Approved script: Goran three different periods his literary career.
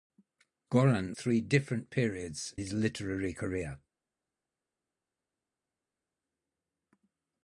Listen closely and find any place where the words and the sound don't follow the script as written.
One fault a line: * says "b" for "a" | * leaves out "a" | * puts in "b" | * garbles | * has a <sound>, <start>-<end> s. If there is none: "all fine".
all fine